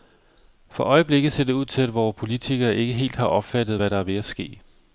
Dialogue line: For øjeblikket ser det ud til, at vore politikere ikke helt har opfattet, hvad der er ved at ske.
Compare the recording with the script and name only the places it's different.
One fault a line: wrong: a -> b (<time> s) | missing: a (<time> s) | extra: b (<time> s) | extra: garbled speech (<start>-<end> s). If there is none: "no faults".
no faults